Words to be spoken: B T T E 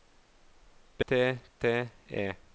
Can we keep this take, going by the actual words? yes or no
yes